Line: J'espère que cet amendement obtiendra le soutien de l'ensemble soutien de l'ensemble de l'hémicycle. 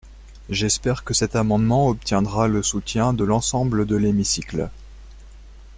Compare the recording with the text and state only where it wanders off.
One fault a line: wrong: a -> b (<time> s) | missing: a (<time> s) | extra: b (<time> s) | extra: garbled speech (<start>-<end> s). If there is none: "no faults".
missing: soutien de l'ensemble (3.8 s)